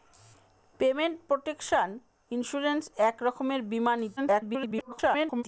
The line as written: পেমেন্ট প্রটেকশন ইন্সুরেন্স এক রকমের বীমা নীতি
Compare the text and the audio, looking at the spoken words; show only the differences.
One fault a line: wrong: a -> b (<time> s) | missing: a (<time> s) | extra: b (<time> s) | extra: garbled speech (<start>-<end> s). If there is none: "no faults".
extra: garbled speech (4.2-5.4 s)